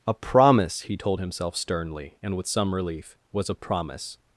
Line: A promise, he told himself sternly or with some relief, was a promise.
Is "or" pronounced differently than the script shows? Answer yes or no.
yes